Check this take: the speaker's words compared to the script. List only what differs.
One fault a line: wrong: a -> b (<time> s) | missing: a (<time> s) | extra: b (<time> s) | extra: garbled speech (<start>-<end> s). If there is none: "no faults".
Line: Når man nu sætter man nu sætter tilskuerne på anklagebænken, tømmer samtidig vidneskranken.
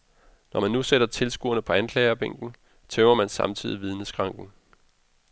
missing: man nu sætter (1.1 s)
extra: man (3.1 s)